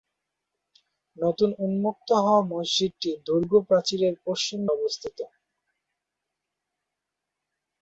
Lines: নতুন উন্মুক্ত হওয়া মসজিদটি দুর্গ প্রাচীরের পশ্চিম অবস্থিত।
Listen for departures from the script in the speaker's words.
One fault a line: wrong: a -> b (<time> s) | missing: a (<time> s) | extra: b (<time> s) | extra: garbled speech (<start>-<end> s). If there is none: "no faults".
no faults